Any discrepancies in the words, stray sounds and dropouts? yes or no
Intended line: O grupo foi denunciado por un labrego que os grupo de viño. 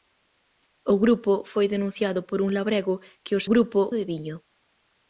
no